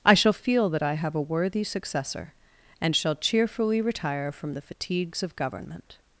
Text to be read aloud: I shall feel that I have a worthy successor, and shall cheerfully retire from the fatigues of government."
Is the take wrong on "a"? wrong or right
right